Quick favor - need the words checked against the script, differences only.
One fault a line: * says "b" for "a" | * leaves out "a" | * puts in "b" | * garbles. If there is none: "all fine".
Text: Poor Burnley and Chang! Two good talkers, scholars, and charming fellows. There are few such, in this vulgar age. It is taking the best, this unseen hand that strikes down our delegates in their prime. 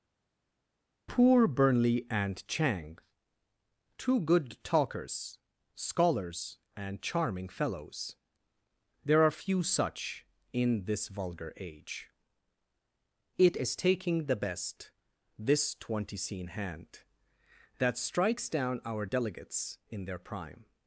* says "twenty scene" for "unseen"